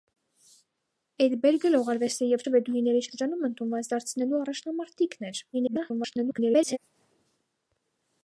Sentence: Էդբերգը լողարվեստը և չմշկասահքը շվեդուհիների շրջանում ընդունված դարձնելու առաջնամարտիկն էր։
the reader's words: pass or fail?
fail